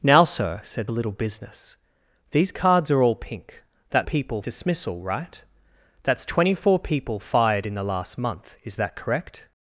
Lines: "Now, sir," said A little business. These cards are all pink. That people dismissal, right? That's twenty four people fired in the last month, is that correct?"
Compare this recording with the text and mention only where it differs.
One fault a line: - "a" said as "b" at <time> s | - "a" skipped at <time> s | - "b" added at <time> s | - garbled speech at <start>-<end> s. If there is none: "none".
none